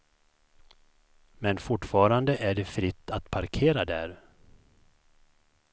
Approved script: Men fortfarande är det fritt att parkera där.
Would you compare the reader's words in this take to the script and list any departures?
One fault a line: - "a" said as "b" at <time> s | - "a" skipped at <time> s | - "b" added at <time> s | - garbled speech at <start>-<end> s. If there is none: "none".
none